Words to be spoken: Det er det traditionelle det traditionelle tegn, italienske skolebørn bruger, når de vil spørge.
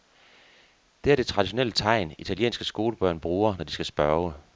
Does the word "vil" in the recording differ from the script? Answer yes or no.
yes